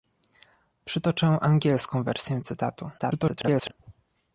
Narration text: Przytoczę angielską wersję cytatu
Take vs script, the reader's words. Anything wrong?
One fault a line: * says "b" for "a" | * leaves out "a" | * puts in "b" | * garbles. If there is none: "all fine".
* garbles